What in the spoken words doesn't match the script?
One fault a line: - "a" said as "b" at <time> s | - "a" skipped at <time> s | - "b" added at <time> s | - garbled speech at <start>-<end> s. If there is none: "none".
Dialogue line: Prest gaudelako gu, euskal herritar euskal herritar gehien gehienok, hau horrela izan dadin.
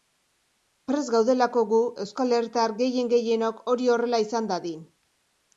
- "euskal herritar" skipped at 2.8 s
- "hau" said as "hori" at 3.8 s